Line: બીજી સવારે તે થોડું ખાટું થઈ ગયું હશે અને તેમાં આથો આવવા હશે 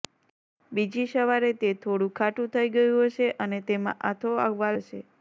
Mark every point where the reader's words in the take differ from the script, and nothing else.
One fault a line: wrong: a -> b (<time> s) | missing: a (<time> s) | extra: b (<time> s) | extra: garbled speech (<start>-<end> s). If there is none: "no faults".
no faults